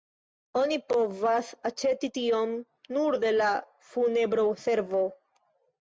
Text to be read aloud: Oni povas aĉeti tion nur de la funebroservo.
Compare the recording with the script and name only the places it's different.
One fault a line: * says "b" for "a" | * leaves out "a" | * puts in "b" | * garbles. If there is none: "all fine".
all fine